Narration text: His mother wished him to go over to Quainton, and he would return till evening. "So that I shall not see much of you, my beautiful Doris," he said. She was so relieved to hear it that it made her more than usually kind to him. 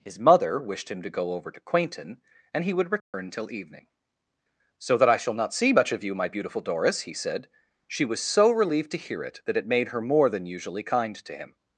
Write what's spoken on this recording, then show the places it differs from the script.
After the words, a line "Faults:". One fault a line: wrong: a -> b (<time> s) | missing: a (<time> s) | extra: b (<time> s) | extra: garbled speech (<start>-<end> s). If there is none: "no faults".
His mother wished him to go over to Quainton, and he would return till evening. "So that I shall not see much of you, my beautiful Doris," he said. She was so relieved to hear it that it made her more than usually kind to him.
Faults:
no faults